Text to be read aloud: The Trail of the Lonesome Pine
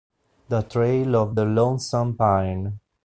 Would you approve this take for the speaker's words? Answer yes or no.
yes